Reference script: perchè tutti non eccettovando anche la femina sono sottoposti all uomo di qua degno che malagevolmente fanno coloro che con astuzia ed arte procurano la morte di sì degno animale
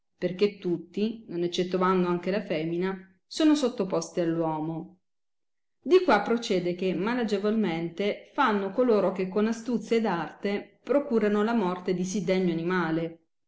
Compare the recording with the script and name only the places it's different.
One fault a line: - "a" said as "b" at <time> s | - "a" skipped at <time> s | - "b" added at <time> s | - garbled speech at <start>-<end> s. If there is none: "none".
- "degno" said as "procede" at 6.2 s